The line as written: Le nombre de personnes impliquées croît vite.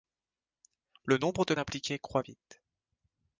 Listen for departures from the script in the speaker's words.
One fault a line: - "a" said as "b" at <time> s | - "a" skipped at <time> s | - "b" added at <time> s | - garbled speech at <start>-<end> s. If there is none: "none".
- "personnes" skipped at 1.5 s